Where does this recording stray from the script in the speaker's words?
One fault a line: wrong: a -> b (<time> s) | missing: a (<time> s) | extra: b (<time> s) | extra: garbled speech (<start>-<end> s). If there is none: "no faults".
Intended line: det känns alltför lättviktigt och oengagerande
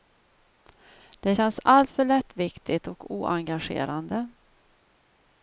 no faults